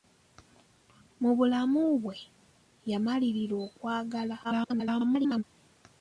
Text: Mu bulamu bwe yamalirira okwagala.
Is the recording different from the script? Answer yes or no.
yes